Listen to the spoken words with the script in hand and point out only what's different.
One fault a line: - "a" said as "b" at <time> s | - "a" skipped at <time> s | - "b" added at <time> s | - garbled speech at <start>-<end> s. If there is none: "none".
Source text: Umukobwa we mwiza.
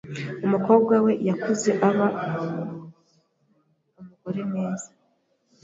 - "yakuze aba umugore" added at 1.3 s